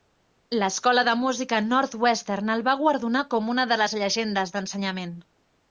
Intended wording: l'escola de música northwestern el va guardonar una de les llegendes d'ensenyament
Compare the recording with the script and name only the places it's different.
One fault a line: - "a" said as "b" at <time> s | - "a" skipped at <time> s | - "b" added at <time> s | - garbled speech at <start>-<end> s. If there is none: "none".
- "com" added at 3.4 s